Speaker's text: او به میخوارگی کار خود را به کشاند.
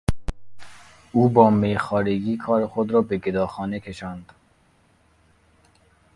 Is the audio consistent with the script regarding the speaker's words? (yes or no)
no